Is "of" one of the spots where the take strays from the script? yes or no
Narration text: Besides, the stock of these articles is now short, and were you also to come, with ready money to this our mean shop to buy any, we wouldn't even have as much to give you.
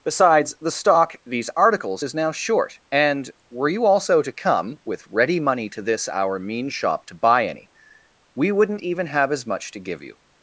yes